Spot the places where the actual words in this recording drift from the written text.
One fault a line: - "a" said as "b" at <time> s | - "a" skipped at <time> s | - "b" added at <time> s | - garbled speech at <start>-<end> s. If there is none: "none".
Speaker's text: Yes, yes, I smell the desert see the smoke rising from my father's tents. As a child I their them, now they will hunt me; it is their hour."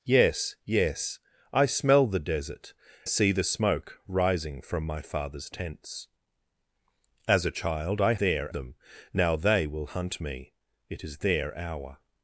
none